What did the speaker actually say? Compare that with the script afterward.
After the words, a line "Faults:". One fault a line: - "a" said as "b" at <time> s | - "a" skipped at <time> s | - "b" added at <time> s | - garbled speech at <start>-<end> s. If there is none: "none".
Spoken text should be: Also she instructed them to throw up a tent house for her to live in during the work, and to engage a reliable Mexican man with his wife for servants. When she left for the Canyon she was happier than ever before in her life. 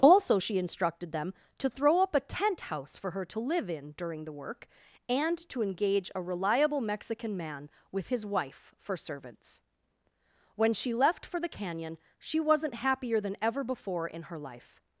Also she instructed them to throw up a tent house for her to live in during the work, and to engage a reliable Mexican man with his wife for servants. When she left for the Canyon she wasn't happier than ever before in her life.
Faults:
- "was" said as "wasn't" at 12.4 s